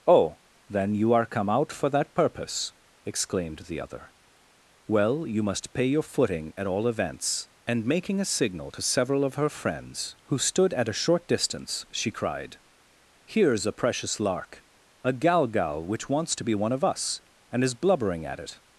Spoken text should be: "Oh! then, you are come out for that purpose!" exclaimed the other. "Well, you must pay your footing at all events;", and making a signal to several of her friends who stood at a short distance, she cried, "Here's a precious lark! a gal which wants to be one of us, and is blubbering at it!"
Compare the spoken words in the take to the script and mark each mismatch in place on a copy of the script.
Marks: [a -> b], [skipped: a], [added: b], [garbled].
"Oh! then, you are come out for that purpose!" exclaimed the other. "Well, you must pay your footing at all events;", and making a signal to several of her friends who stood at a short distance, she cried, "Here's a precious lark! a gal [added: gal] which wants to be one of us, and is blubbering at it!"